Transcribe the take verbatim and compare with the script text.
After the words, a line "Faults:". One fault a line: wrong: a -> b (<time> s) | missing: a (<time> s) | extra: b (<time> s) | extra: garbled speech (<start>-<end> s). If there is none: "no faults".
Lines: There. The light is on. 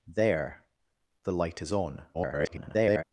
There. The light is on. [garbled]
Faults:
extra: garbled speech (2.1-3.0 s)